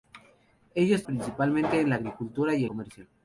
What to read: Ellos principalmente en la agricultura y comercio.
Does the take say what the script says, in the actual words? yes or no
yes